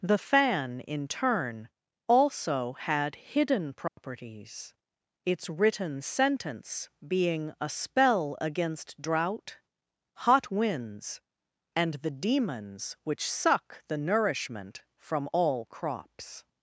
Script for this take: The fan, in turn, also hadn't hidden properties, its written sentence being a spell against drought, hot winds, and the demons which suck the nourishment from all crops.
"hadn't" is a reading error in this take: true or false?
true